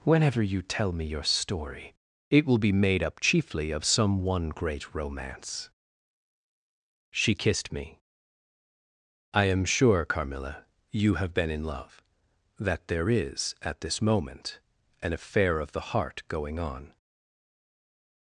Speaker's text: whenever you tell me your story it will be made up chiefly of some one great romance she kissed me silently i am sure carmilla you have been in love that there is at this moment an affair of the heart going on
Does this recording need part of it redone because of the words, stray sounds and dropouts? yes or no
yes